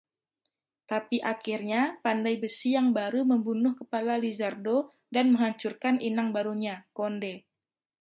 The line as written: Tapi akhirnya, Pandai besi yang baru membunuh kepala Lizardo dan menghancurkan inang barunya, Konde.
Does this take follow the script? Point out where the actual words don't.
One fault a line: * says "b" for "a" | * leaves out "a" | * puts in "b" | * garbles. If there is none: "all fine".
all fine